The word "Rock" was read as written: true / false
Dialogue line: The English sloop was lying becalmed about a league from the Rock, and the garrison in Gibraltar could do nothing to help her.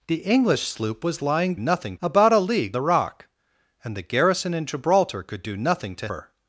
true